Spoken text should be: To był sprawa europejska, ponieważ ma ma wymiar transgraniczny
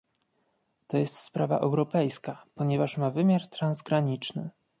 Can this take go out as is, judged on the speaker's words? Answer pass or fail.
fail